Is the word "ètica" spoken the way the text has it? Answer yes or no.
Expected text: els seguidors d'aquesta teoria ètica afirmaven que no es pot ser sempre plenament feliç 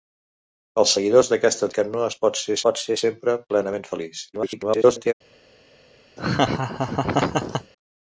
no